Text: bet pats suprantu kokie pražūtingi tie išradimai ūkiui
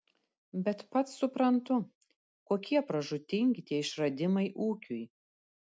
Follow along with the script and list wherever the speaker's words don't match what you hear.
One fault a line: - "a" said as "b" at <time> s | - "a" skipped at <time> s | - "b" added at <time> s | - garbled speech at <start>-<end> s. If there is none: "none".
none